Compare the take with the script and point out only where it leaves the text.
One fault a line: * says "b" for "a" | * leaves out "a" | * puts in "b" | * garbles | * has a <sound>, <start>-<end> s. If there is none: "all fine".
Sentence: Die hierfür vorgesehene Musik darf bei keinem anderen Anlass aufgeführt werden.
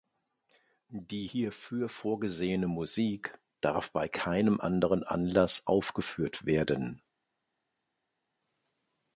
all fine